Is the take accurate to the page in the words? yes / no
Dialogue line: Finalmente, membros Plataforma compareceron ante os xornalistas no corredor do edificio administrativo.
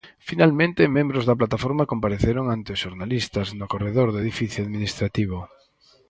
no